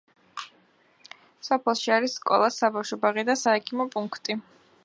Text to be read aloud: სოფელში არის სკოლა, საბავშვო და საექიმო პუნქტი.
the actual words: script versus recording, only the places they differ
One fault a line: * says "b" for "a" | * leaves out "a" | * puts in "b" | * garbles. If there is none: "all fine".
* puts in "ბაღი"